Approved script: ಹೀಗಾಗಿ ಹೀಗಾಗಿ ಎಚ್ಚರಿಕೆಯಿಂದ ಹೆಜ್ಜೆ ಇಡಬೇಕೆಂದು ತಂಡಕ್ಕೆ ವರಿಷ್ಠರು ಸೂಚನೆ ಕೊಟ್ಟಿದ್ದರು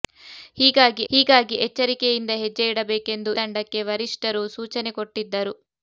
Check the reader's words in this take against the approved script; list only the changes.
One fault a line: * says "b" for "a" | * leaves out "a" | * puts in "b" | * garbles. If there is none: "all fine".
all fine